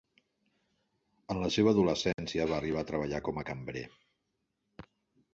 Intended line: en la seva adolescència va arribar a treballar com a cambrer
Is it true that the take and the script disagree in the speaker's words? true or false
false